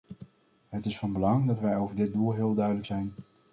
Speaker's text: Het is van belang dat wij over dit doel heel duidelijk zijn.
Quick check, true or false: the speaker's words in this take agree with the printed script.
true